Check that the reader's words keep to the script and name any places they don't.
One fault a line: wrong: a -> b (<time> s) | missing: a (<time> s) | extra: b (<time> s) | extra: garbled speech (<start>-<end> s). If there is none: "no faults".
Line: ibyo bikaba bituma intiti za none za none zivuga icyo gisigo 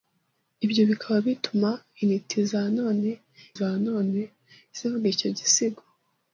no faults